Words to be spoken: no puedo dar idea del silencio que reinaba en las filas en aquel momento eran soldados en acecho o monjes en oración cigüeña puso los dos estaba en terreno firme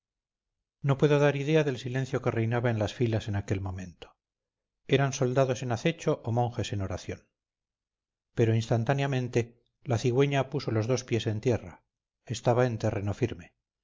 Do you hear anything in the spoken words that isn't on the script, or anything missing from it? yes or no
yes